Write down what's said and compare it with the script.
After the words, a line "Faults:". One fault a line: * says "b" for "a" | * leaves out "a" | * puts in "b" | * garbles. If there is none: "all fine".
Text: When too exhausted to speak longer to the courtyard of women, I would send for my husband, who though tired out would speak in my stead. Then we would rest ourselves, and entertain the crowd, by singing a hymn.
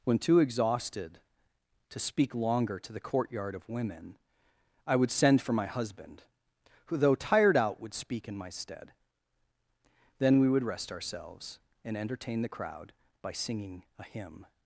When too exhausted to speak longer to the courtyard of women, I would send for my husband, who though tired out would speak in my stead. Then we would rest ourselves, and entertain the crowd, by singing a hymn.
Faults:
all fine